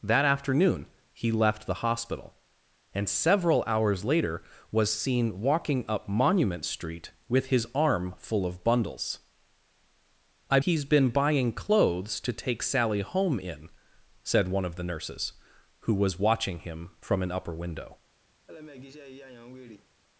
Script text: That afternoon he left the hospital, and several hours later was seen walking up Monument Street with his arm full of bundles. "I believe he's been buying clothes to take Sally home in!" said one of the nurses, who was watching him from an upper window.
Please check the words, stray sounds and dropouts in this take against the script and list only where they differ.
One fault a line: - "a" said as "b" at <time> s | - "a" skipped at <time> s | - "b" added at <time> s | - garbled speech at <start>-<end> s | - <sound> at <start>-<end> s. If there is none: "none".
- "believe" skipped at 10.6 s
- laugh at 18.5-19.9 s